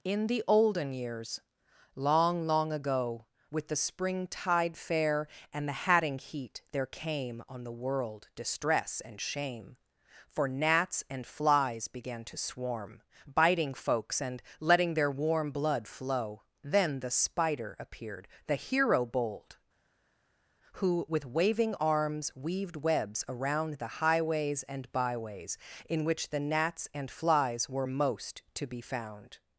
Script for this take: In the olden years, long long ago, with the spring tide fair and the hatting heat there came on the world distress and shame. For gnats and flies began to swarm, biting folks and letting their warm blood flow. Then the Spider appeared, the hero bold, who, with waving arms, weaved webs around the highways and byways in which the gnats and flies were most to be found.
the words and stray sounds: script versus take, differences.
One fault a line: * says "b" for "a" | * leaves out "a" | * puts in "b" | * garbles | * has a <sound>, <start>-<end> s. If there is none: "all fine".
all fine